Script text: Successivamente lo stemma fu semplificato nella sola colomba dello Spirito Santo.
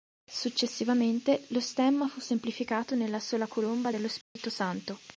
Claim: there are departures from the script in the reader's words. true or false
false